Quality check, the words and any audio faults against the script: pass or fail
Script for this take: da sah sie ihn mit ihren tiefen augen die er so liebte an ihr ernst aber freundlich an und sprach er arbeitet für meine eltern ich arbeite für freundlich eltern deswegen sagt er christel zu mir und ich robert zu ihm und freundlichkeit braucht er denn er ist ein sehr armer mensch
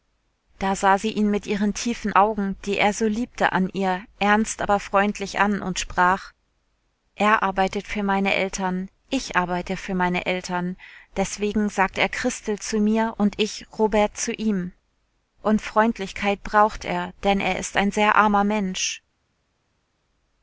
fail